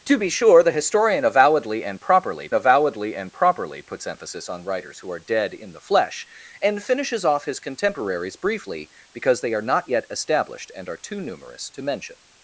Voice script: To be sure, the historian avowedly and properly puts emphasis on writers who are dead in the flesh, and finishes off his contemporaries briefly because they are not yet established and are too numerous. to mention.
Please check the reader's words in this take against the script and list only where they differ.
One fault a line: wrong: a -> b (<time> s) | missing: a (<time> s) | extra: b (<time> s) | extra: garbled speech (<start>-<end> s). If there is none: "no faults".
extra: avowedly and properly (2.5 s)